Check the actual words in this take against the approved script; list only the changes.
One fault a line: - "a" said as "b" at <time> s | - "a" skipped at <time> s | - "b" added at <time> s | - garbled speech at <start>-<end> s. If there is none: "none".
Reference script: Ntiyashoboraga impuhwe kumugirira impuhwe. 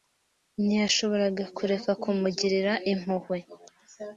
- "impuhwe" said as "kureka" at 1.6 s